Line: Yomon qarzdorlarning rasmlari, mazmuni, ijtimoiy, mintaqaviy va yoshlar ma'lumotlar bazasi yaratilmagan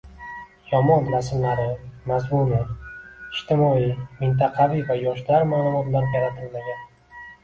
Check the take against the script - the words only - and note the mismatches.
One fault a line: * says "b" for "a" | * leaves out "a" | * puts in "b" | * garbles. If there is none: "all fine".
* leaves out "qarzdorlarning"
* leaves out "bazasi"